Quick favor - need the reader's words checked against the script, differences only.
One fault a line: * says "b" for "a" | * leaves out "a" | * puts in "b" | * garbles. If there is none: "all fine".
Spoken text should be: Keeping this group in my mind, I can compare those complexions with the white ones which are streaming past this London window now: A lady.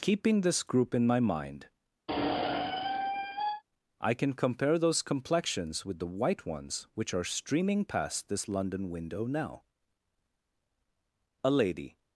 all fine